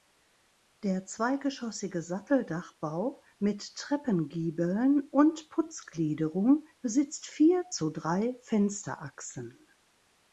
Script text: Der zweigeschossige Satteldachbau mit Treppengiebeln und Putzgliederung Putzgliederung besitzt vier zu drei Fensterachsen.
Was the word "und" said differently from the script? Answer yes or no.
no